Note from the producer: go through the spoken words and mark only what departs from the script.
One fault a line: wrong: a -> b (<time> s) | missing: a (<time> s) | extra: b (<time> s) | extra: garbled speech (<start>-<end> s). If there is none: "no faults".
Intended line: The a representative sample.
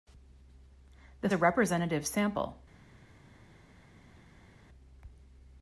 no faults